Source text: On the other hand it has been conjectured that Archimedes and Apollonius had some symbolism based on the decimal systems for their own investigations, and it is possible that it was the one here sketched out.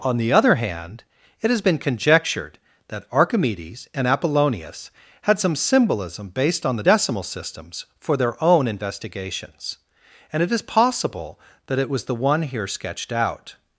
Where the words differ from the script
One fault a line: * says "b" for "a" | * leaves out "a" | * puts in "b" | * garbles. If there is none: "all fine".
all fine